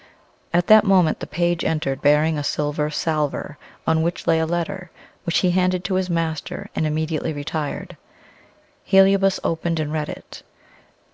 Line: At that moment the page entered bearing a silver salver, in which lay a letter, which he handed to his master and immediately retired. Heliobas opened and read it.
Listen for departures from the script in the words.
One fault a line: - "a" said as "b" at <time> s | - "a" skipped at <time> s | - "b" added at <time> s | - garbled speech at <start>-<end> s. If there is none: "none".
- "in" said as "on" at 3.8 s